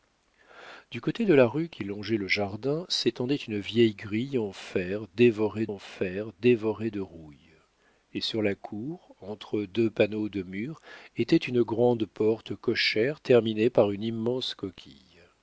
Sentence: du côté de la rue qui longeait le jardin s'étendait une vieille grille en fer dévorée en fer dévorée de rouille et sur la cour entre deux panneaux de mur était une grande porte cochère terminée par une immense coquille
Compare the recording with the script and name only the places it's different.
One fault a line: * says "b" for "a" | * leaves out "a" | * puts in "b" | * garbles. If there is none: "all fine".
all fine